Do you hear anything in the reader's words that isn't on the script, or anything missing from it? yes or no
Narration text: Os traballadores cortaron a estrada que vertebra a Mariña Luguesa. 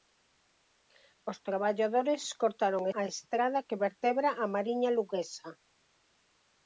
no